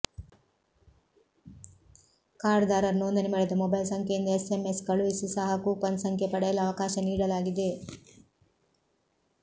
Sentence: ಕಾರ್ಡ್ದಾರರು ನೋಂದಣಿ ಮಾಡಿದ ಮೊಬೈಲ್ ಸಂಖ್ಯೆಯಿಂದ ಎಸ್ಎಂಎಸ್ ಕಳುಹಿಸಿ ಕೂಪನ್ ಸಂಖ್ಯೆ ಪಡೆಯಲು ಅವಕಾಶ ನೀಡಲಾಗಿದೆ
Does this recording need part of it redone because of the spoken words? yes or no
yes